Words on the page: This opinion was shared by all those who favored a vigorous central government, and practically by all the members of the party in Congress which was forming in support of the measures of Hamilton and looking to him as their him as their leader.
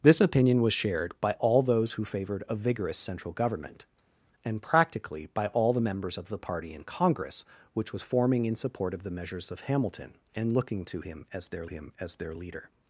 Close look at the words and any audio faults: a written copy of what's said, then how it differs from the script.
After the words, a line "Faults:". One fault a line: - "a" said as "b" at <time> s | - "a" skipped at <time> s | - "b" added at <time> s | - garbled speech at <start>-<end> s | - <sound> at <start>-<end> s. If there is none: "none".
This opinion was shared by all those who favored a vigorous central government, and practically by all the members of the party in Congress which was forming in support of the measures of Hamilton and looking to him as their him as their leader.
Faults:
none